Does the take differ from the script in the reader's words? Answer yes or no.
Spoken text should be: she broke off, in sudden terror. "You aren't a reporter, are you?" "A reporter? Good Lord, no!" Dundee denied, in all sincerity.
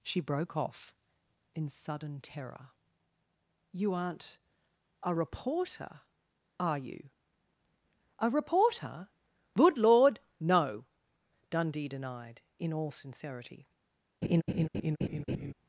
no